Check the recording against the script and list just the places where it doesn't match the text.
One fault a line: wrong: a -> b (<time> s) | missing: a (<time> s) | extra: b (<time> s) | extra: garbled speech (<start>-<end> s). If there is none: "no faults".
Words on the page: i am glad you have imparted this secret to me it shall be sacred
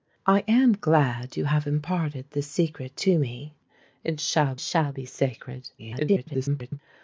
extra: shall (4.6 s)
extra: garbled speech (5.8-6.8 s)